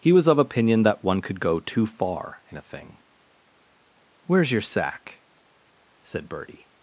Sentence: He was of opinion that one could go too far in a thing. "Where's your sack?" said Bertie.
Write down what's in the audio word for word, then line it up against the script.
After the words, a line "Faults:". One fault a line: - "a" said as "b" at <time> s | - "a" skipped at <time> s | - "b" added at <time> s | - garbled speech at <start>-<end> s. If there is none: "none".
He was of opinion that one could go too far in a thing. "Where's your sack?" said Bertie.
Faults:
none